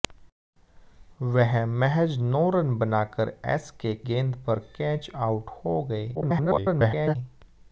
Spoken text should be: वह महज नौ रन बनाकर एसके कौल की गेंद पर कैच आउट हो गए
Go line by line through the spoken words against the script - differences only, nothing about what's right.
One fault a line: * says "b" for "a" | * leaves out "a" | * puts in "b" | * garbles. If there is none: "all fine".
* leaves out "कौल की"
* garbles